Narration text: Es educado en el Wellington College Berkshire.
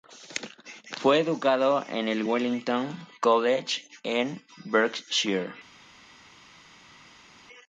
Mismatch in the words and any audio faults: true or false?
true